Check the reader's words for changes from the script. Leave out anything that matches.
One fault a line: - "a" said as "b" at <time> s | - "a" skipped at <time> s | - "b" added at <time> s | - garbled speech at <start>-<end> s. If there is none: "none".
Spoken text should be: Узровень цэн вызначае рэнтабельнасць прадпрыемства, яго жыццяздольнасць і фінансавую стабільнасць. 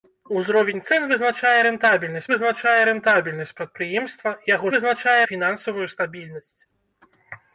- "вызначае рэнтабельнасць" added at 2.3 s
- "жыццяздольнасць" said as "вызначае" at 4.7 s